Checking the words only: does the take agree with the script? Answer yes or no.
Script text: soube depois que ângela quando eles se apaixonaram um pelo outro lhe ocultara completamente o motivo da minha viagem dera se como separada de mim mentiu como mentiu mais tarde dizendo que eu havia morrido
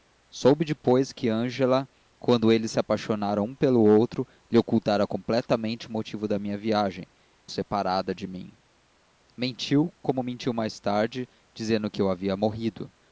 no